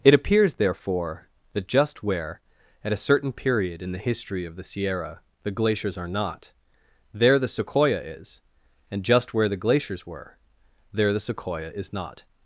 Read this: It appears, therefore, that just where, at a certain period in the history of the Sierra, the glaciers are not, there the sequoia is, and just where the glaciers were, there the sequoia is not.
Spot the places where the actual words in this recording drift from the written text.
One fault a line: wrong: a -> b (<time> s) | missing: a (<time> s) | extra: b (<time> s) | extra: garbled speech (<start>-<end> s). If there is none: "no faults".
no faults